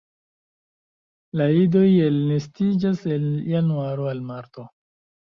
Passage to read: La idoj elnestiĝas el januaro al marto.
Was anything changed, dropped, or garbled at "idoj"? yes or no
no